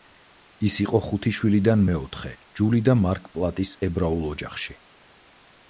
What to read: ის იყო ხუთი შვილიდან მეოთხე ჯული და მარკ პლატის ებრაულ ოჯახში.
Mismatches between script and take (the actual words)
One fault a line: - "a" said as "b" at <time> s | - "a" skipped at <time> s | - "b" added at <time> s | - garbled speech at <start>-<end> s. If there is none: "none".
none